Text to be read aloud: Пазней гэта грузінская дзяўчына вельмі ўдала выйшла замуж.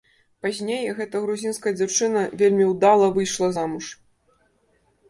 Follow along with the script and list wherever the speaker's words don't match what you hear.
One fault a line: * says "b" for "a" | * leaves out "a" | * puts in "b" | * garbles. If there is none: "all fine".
all fine